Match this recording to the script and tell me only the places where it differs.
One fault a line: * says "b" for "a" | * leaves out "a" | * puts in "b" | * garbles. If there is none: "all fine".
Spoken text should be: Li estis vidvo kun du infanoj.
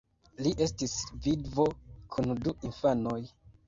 all fine